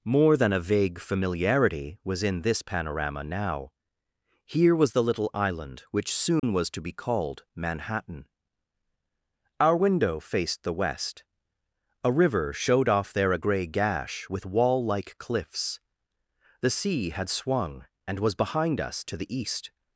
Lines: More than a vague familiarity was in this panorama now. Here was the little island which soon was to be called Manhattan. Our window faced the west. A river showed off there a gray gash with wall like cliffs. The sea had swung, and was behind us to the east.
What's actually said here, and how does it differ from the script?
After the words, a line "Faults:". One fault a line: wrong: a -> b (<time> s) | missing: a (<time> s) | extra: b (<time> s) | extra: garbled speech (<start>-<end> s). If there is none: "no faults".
More than a vague familiarity was in this panorama now. Here was the little island which soon was to be called Manhattan. Our window faced the west. A river showed off there a gray gash with wall like cliffs. The sea had swung, and was behind us to the east.
Faults:
no faults